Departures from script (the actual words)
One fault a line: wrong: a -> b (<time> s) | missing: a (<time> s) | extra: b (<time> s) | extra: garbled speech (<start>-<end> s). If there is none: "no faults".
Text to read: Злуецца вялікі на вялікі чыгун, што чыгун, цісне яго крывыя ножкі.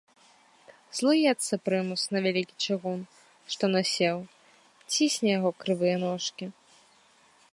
wrong: вялікі -> прымус (1.7 s)
wrong: чыгун -> насеў (3.8 s)